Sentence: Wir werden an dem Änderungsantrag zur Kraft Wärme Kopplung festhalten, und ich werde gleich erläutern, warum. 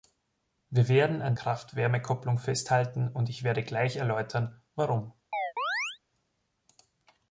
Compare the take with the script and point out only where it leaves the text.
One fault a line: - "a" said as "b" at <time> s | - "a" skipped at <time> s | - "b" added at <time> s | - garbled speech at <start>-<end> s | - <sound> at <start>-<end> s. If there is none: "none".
- "dem Änderungsantrag zur" skipped at 1.4 s
- chirp at 5.3-6.0 s